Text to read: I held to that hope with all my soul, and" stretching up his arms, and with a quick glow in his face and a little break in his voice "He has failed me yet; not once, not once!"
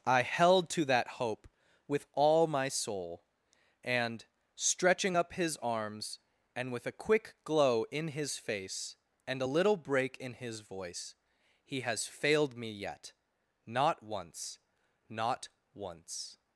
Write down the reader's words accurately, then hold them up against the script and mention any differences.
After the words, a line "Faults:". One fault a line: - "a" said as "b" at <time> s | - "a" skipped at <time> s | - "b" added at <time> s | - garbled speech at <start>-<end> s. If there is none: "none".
I held to that hope with all my soul, and" stretching up his arms, and with a quick glow in his face and a little break in his voice "He has failed me yet; not once, not once!"
Faults:
none